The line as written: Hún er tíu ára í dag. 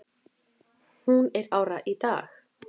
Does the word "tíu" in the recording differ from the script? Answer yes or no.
yes